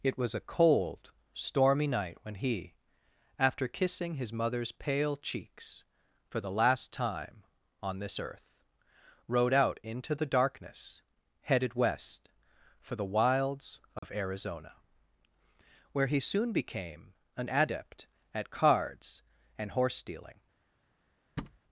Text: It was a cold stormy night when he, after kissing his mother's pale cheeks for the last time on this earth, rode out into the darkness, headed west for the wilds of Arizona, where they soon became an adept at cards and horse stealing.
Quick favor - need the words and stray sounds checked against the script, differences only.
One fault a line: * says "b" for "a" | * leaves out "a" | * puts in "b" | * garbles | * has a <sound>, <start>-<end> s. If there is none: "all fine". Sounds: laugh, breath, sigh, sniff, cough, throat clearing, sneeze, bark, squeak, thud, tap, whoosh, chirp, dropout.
* has a dropout, 14.0-14.0 s
* says "he" for "they"
* has a thud, 21.4-21.6 s